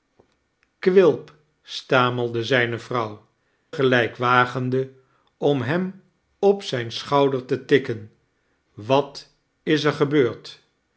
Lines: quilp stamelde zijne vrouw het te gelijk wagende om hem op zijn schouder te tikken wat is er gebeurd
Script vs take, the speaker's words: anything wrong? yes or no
yes